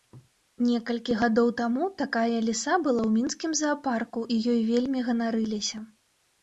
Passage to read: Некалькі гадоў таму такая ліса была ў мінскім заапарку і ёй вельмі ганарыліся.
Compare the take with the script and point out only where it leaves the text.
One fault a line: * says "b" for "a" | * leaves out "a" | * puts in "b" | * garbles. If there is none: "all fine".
all fine